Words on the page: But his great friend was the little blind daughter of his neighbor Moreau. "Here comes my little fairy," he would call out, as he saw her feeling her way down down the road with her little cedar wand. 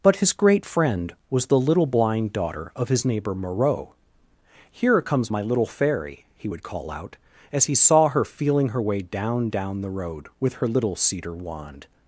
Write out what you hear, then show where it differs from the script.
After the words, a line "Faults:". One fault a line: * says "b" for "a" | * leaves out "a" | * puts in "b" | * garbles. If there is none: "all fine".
But his great friend was the little blind daughter of his neighbor Moreau. "Here comes my little fairy," he would call out, as he saw her feeling her way down down the road with her little cedar wand.
Faults:
all fine